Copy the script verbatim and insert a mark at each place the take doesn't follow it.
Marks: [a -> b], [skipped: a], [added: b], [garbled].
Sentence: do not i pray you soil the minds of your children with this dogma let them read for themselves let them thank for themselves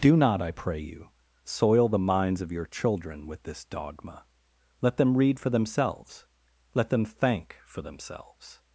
do not i pray you soil the minds of your children with this dogma let them read for themselves let them thank for themselves